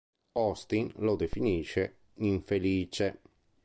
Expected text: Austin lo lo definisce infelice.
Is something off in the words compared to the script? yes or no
yes